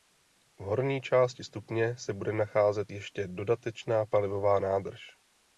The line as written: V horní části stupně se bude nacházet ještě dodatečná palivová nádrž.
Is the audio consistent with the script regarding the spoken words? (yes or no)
yes